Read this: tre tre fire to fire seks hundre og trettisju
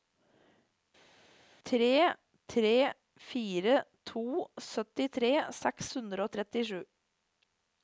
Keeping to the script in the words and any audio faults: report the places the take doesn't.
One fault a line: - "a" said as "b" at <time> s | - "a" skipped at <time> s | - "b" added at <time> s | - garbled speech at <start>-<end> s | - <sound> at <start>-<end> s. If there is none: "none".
- "fire" said as "syttitre" at 4.7 s